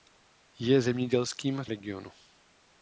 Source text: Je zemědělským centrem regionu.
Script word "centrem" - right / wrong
wrong